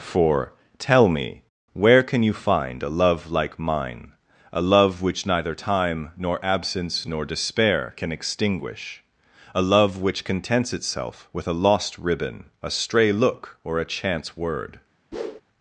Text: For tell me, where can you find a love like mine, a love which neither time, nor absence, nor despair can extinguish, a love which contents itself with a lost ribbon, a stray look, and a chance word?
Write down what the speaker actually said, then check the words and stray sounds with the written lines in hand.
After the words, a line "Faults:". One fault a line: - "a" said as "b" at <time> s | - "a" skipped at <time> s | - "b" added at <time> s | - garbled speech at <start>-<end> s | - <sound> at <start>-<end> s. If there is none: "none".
For tell me, where can you find a love like mine, a love which neither time, nor absence, nor despair can extinguish, a love which contents itself with a lost ribbon, a stray look, or a chance word?
Faults:
- "and" said as "or" at 13.7 s
- whoosh at 15.1-15.4 s